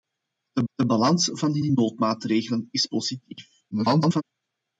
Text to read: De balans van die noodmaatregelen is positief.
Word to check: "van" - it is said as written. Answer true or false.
true